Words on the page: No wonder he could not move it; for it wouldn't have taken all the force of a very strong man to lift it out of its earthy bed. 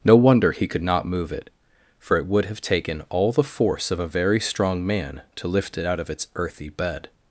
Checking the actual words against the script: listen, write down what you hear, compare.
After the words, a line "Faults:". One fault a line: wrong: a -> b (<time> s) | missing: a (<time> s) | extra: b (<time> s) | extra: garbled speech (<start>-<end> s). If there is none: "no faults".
No wonder he could not move it; for it would have taken all the force of a very strong man to lift it out of its earthy bed.
Faults:
wrong: wouldn't -> would (2.2 s)